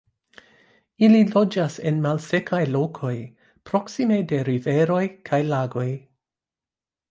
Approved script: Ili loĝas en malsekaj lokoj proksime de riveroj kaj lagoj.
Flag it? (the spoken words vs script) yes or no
no